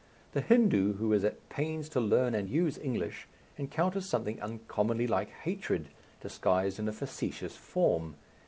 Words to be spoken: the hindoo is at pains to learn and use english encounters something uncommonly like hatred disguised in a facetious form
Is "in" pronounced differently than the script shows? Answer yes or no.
no